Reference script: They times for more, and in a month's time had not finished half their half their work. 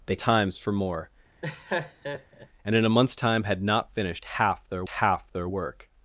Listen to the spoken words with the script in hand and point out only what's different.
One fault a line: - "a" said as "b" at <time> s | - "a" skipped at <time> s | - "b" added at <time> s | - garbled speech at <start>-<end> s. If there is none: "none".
none